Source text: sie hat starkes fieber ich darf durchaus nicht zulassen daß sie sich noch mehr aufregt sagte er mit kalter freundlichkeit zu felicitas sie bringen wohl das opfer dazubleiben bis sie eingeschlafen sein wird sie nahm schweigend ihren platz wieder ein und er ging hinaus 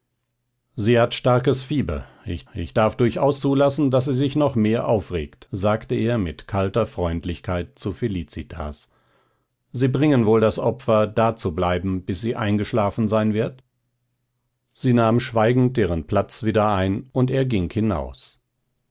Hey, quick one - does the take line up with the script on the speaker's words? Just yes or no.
no